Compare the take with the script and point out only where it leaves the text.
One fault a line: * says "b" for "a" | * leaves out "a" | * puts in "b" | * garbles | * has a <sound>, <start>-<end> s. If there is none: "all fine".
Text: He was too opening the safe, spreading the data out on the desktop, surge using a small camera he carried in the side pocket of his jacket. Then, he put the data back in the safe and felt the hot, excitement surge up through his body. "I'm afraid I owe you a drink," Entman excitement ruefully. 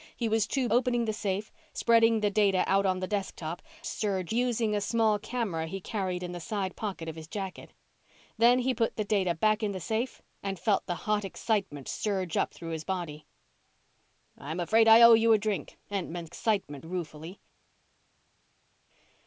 all fine